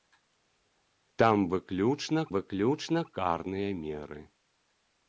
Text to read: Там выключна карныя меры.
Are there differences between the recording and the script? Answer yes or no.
yes